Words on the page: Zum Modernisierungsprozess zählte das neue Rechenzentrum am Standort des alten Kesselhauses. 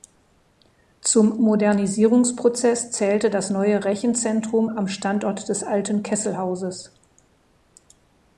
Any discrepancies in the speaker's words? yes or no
no